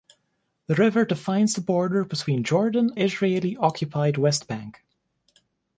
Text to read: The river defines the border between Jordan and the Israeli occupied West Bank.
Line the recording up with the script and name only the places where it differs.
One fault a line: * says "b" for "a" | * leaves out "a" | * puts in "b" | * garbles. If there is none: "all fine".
* leaves out "and the"